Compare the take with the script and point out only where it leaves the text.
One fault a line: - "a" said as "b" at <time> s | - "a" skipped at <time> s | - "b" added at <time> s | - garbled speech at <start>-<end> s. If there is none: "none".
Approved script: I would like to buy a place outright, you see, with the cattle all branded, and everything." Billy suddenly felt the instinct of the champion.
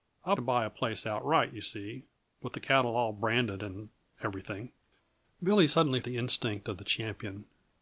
- "would like" skipped at 0.3 s
- "felt" skipped at 6.0 s